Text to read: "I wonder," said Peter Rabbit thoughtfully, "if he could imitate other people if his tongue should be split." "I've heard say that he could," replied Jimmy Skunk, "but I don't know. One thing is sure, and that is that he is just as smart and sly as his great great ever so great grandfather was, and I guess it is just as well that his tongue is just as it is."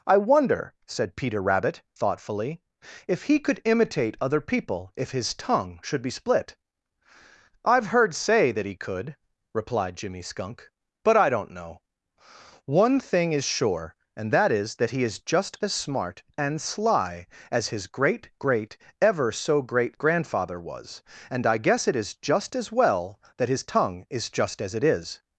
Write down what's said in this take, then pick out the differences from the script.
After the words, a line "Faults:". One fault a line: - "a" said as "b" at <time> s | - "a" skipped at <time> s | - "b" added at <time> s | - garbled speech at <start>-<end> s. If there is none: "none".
"I wonder," said Peter Rabbit thoughtfully, "if he could imitate other people if his tongue should be split." "I've heard say that he could," replied Jimmy Skunk, "but I don't know. One thing is sure, and that is that he is just as smart and sly as his great great ever so great grandfather was, and I guess it is just as well that his tongue is just as it is."
Faults:
none